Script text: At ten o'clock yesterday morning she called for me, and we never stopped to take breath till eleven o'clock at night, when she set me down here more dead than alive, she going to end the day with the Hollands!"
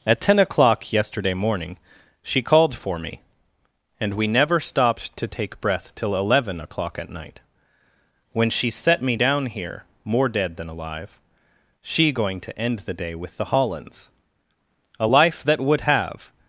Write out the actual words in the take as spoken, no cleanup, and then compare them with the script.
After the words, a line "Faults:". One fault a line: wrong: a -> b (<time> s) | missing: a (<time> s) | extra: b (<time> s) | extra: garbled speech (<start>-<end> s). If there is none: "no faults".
At ten o'clock yesterday morning she called for me, and we never stopped to take breath till eleven o'clock at night, when she set me down here more dead than alive, she going to end the day with the Hollands!" A life that would have
Faults:
extra: A life that would have (15.0 s)